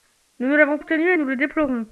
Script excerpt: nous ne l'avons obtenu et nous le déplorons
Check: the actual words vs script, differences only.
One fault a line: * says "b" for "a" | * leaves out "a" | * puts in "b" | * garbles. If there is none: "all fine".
all fine